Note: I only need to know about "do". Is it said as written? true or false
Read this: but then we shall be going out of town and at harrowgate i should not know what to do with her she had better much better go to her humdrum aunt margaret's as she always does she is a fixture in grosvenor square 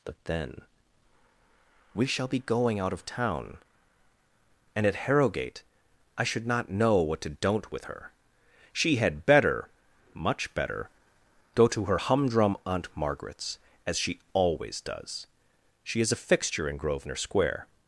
false